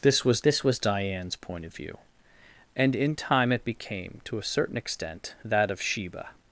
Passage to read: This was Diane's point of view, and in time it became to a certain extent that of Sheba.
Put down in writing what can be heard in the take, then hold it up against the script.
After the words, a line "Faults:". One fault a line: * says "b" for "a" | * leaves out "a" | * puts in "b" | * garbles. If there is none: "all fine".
This was this was Diane's point of view, and in time it became to a certain extent that of Sheba.
Faults:
* puts in "this was"